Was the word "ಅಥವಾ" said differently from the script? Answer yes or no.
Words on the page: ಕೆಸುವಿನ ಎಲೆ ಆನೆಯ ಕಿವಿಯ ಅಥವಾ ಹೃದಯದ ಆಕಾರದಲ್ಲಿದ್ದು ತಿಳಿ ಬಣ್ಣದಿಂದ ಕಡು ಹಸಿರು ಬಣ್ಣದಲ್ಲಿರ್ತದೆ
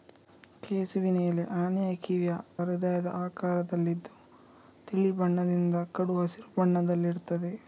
yes